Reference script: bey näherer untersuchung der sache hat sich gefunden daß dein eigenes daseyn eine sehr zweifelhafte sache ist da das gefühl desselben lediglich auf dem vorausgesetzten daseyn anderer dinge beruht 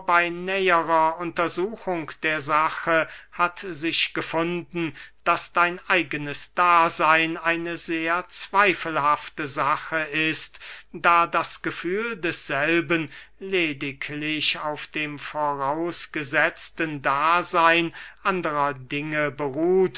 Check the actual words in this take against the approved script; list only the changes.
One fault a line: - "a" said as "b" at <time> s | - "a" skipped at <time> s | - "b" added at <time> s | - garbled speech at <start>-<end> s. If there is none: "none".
none